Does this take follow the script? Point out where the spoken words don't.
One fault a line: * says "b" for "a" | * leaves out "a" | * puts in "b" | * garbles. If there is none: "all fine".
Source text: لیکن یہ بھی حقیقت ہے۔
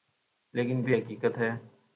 * leaves out "یہ"